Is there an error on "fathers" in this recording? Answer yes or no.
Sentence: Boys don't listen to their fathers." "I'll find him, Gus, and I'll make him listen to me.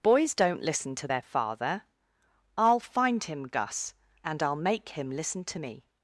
yes